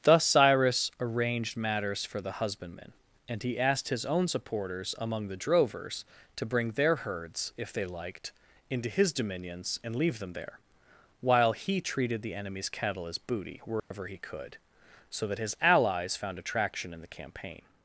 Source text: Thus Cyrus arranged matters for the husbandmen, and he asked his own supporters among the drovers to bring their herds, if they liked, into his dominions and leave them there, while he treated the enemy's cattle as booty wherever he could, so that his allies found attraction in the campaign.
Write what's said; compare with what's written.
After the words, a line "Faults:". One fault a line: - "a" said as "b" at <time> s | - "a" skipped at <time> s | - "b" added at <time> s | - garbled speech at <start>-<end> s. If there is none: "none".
Thus Cyrus arranged matters for the husbandmen, and he asked his own supporters among the drovers to bring their herds, if they liked, into his dominions and leave them there, while he treated the enemy's cattle as booty wherever he could, so that his allies found attraction in the campaign.
Faults:
none